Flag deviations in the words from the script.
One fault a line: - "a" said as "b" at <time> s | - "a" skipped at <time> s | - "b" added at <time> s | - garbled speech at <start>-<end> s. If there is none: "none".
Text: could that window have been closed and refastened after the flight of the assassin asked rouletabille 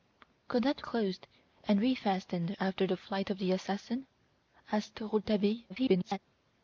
- "window have been" skipped at 0.8 s
- garbled speech at 5.7-6.2 s